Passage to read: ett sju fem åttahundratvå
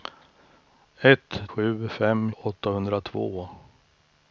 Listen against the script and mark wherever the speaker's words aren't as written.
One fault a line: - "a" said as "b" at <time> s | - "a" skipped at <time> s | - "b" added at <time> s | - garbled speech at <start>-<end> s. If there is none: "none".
none